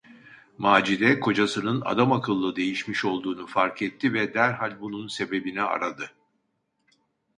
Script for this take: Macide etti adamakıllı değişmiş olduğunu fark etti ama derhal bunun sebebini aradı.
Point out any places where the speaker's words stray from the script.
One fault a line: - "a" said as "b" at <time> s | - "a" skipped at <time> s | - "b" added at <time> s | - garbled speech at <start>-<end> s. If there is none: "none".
- "etti" said as "kocasının" at 1.2 s
- "ama" said as "ve" at 4.1 s